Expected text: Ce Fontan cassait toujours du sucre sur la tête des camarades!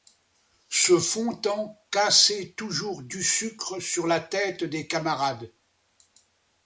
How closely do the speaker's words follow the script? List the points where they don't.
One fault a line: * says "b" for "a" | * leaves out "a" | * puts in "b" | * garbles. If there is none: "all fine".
all fine